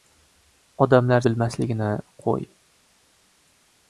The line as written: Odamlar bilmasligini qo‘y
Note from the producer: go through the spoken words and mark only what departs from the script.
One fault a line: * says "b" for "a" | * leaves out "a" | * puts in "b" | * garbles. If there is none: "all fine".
all fine